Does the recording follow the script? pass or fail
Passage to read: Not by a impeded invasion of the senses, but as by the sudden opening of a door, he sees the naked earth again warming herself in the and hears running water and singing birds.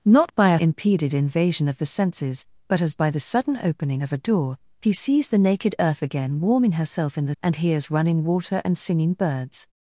pass